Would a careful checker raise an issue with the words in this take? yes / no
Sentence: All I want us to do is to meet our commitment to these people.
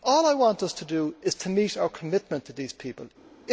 no